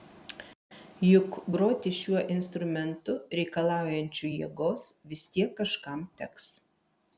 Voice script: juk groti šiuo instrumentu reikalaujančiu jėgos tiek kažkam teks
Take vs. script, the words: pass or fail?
fail